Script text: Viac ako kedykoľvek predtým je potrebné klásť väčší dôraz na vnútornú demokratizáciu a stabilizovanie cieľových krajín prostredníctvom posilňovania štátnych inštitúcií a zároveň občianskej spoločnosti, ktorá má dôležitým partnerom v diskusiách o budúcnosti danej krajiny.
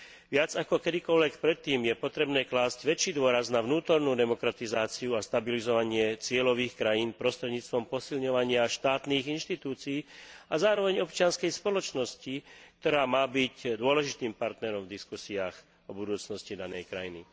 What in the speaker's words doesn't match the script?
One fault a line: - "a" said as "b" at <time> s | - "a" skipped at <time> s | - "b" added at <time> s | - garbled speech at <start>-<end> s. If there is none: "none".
- "byť" added at 13.3 s